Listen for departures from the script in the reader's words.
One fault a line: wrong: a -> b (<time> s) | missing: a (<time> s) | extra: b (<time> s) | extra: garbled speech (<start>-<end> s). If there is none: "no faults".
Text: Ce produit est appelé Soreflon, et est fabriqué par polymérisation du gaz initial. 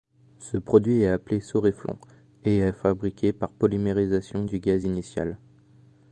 no faults